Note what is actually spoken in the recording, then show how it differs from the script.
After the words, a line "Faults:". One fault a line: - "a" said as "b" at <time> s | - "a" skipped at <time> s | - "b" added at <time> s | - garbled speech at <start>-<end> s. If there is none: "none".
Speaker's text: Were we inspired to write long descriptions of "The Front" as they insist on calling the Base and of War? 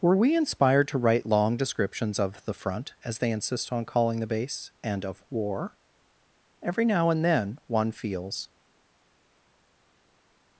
Were we inspired to write long descriptions of "The Front" as they insist on calling the Base and of War? Every now and then one feels
Faults:
- "Every now and then one feels" added at 6.6 s